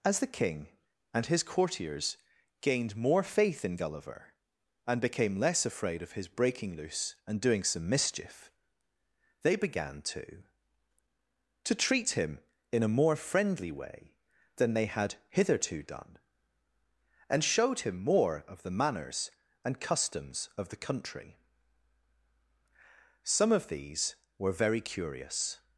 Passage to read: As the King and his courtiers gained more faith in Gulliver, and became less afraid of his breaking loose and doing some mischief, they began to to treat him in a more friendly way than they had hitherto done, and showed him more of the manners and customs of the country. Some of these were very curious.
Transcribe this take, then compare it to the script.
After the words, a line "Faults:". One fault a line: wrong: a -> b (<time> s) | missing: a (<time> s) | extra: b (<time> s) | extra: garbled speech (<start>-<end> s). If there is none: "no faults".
As the King and his courtiers gained more faith in Gulliver, and became less afraid of his breaking loose and doing some mischief, they began to to treat him in a more friendly way than they had hitherto done, and showed him more of the manners and customs of the country. Some of these were very curious.
Faults:
no faults